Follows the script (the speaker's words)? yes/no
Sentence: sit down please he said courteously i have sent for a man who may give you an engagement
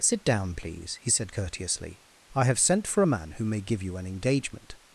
yes